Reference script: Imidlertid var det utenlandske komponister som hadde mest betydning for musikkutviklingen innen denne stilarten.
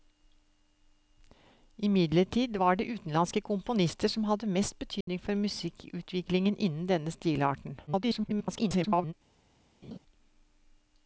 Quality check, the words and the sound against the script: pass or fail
fail